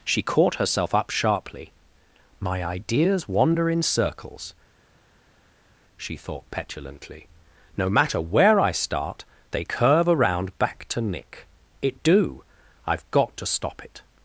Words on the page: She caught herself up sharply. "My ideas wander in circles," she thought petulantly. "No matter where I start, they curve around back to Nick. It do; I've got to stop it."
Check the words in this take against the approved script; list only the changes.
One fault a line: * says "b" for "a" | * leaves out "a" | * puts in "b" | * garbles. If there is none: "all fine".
all fine